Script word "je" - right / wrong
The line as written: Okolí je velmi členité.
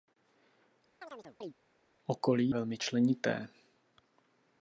wrong